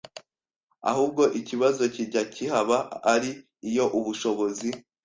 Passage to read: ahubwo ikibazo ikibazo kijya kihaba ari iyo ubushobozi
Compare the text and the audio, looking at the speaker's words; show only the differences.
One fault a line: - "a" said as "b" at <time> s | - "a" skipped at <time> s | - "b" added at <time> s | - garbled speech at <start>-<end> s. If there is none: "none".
- "ikibazo" skipped at 1.8 s